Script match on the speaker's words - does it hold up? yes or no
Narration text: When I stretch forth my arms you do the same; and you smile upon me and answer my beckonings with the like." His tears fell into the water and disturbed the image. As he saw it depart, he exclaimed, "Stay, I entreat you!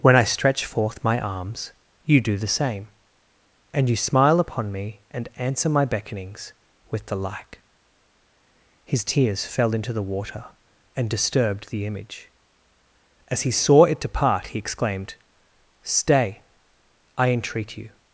yes